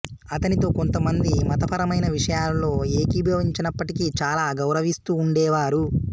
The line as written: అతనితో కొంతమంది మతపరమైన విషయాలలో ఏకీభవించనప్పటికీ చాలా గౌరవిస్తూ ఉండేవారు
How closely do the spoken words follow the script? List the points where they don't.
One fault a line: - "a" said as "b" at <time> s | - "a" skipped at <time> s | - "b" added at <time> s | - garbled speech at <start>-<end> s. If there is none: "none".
none